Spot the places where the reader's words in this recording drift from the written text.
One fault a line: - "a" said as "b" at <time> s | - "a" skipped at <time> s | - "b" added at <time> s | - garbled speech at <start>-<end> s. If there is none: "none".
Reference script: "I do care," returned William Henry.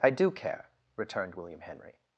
none